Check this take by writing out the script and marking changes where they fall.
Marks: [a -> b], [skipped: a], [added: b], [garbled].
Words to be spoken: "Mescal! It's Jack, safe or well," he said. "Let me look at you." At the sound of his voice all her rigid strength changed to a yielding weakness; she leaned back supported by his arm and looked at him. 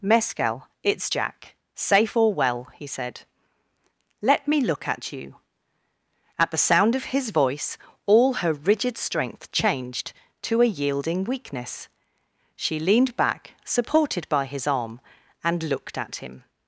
"Mescal! It's Jack, safe or well," he said. "Let me look at you." At the sound of his voice all her rigid strength changed to a yielding weakness; she leaned back supported by his arm and looked at him.